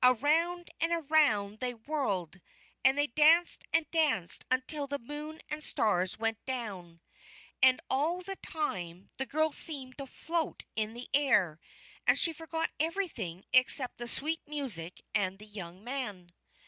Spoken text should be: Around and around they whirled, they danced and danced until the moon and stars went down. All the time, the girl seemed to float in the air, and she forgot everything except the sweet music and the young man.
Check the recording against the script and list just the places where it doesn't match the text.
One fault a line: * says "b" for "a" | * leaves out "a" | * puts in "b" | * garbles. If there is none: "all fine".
* puts in "and"
* puts in "And"